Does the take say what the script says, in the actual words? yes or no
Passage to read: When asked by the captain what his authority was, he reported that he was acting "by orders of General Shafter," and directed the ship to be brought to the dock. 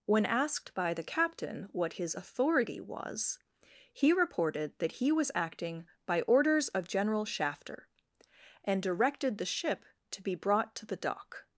yes